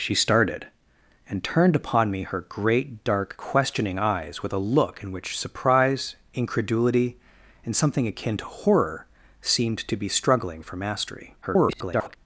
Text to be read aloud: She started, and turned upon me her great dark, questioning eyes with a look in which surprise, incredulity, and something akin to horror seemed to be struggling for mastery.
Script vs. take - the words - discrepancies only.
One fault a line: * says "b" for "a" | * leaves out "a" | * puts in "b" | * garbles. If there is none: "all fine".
* garbles